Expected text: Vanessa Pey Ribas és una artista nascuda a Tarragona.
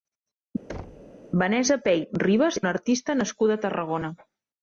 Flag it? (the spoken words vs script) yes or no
yes